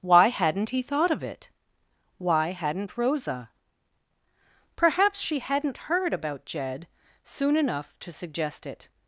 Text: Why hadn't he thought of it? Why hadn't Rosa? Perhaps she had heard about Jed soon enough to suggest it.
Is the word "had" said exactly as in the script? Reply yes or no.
no